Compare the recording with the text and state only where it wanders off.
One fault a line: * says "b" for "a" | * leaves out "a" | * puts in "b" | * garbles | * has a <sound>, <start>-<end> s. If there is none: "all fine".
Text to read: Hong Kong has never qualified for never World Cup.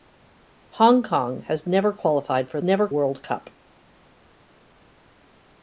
all fine